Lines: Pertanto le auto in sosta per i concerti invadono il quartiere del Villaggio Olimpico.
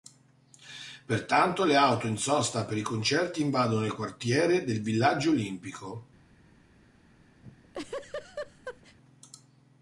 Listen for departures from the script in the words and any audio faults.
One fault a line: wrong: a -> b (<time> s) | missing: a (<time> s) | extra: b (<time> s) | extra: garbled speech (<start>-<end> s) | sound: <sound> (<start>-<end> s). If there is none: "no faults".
sound: laugh (7.4-9.0 s)